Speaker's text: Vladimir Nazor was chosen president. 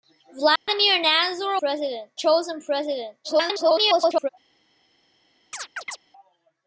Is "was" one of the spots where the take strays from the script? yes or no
yes